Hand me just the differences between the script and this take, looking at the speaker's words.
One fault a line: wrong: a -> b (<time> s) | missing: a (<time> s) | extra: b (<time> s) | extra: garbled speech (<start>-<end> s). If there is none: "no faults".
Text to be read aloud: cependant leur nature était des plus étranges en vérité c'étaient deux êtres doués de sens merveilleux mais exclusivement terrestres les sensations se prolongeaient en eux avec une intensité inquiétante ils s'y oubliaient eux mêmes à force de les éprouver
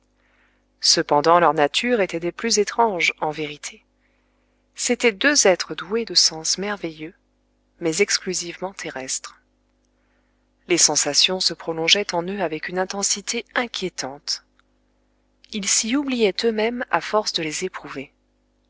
no faults